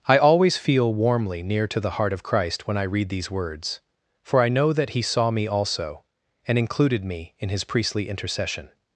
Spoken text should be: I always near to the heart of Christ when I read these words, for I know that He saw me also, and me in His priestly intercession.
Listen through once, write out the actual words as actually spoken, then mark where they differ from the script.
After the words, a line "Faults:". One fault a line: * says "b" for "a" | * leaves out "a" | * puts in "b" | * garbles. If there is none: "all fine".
I always feel warmly near to the heart of Christ when I read these words, for I know that He saw me also, and included me in His priestly intercession.
Faults:
* puts in "feel warmly"
* puts in "included"